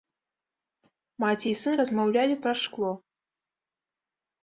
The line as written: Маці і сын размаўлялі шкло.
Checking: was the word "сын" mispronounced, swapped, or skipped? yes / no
no